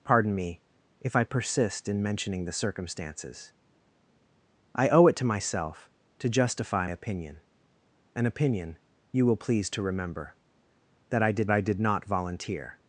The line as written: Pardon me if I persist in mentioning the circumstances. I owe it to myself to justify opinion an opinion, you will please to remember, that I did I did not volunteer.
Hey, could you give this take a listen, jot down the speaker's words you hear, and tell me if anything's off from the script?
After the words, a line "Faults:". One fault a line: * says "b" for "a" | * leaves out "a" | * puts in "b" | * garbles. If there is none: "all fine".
Pardon me if I persist in mentioning the circumstances. I owe it to myself to justify opinion an opinion, you will please to remember, that I did I did not volunteer.
Faults:
all fine